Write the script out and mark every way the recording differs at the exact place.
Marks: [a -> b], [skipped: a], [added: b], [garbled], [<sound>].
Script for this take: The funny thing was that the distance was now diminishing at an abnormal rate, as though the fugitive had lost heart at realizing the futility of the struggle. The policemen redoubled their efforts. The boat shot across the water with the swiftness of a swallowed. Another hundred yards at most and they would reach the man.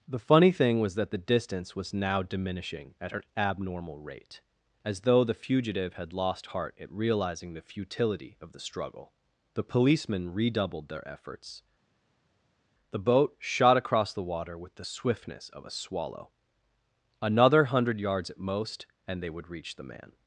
The funny thing was that the distance was now diminishing at an abnormal rate, as though the fugitive had lost heart at realizing the futility of the struggle. The policemen redoubled their efforts. The boat shot across the water with the swiftness of a [swallowed. -> swallow] Another hundred yards at most and they would reach the man.